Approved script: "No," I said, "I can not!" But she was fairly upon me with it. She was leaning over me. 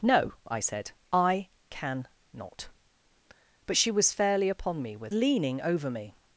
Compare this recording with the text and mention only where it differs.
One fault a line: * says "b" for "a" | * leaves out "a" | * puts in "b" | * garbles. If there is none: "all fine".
* leaves out "it She was"